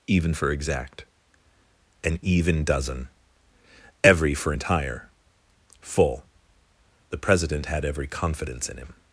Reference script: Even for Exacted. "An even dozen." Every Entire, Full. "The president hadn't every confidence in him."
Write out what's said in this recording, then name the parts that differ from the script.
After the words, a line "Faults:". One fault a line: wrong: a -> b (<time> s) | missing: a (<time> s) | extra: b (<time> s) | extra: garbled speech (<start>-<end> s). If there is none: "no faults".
Even for Exact. "An even dozen." Every for Entire, Full. "The president had every confidence in him."
Faults:
wrong: Exacted -> Exact (0.5 s)
extra: for (4.3 s)
wrong: hadn't -> had (7.7 s)